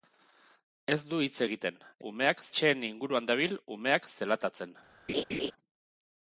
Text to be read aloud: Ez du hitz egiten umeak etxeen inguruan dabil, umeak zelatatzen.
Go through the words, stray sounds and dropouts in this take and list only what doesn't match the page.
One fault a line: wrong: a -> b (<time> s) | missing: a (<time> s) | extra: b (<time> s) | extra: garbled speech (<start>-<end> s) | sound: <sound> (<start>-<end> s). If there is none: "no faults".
sound: laugh (5.1-5.5 s)